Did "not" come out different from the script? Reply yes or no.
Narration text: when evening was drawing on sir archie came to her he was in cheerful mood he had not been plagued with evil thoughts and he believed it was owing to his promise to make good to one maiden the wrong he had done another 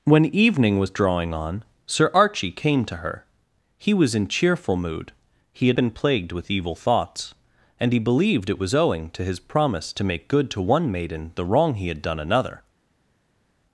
yes